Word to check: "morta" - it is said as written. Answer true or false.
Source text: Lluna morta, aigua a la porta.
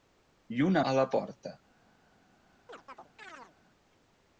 false